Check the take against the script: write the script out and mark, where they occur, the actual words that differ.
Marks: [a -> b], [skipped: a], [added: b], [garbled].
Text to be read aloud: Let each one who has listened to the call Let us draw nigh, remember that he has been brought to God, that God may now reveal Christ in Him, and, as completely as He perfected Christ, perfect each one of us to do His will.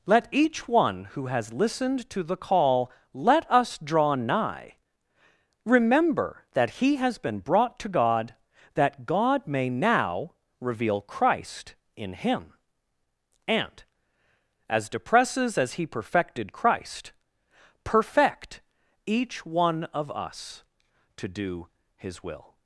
Let each one who has listened to the call Let us draw nigh, remember that he has been brought to God, that God may now reveal Christ in Him, and, as [completely -> depresses] as He perfected Christ, perfect each one of us to do His will.